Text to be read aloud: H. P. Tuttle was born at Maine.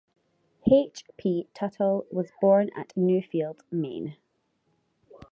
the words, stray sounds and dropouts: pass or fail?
fail